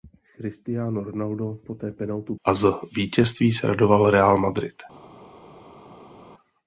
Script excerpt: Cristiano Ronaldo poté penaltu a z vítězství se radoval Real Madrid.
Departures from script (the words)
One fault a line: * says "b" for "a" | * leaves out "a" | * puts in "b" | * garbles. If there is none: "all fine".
all fine